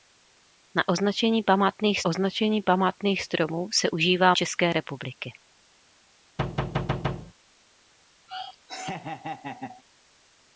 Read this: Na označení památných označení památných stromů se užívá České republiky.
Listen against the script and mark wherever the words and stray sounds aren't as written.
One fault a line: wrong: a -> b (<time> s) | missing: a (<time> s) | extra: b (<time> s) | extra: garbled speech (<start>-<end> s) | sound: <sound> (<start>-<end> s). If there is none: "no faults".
sound: thud (6.4-7.3 s)
sound: laugh (8.3-9.8 s)